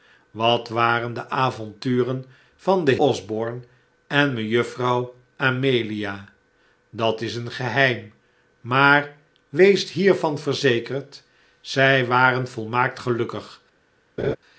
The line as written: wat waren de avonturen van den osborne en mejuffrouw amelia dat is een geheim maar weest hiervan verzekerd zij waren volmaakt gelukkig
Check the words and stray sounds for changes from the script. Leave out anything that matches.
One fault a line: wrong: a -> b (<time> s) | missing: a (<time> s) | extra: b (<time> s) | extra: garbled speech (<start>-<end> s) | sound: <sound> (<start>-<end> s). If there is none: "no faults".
sound: laugh (14.2-14.4 s)